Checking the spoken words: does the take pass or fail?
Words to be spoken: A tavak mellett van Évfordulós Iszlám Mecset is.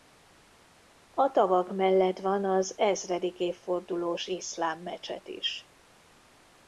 fail